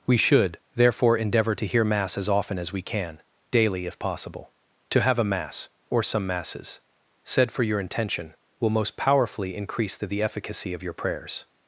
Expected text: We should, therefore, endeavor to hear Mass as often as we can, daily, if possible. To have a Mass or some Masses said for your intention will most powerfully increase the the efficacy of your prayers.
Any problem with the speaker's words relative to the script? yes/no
no